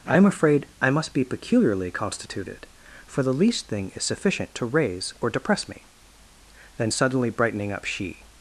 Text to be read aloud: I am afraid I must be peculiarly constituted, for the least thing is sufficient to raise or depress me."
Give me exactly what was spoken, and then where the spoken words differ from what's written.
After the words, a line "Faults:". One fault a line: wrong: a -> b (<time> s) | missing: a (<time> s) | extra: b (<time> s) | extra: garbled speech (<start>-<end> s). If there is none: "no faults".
I am afraid I must be peculiarly constituted, for the least thing is sufficient to raise or depress me." Then suddenly brightening up, she
Faults:
extra: Then suddenly brightening up she (6.8 s)